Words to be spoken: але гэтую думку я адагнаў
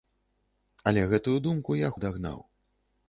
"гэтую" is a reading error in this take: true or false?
false